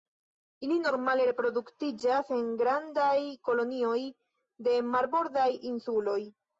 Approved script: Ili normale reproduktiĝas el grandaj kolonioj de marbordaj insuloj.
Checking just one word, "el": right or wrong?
wrong